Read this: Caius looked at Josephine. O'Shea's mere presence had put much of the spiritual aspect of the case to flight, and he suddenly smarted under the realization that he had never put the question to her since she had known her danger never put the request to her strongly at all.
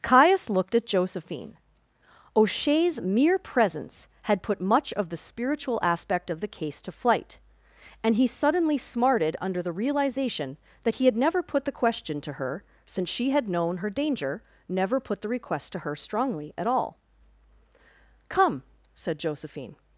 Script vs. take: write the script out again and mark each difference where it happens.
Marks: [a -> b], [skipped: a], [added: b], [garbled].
Caius looked at Josephine. O'Shea's mere presence had put much of the spiritual aspect of the case to flight, and he suddenly smarted under the realization that he had never put the question to her since she had known her danger never put the request to her strongly at all. [added: Come said Josephine]